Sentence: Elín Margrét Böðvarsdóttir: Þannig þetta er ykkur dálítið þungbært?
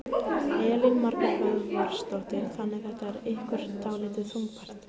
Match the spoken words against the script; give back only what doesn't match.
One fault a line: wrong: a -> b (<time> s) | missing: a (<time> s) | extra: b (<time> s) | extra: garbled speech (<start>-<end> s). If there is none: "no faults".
no faults